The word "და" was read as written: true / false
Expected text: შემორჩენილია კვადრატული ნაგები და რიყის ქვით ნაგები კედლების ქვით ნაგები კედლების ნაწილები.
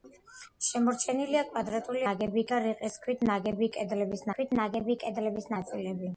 true